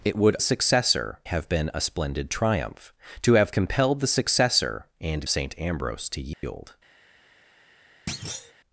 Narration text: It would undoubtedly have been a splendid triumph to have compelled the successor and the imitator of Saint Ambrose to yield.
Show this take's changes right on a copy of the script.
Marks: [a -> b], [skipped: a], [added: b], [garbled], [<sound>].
It would [undoubtedly -> successor] have been a splendid triumph to have compelled the successor and [skipped: the imitator of] Saint Ambrose to yield. [dropout] [thud]